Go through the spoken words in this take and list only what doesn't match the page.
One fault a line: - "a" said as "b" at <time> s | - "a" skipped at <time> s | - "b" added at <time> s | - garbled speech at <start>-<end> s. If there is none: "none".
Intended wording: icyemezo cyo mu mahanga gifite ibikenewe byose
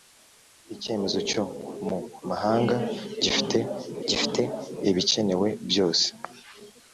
- "gifite" added at 4.1 s